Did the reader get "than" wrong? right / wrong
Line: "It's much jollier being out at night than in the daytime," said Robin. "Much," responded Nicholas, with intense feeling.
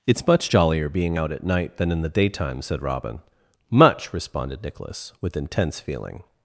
right